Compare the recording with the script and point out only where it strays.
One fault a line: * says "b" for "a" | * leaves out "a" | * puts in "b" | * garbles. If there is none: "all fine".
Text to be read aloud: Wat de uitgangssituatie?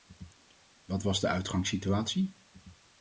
* puts in "was"